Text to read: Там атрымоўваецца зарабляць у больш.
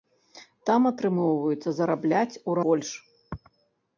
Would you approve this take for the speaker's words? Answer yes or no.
yes